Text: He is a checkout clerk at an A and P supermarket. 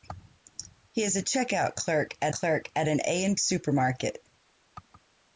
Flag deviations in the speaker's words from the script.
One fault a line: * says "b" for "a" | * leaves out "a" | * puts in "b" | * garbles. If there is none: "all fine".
* puts in "clerk at"
* leaves out "P"